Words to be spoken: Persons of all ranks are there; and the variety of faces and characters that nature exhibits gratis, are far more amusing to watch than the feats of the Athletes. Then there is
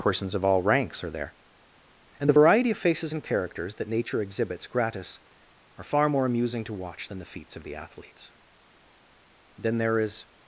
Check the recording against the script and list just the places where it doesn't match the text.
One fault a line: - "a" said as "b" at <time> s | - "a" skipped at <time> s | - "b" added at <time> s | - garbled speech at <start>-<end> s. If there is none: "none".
none